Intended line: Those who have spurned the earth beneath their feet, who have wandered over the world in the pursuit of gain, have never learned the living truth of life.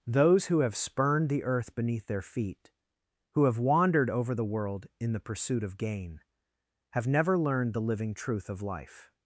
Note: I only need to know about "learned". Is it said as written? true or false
true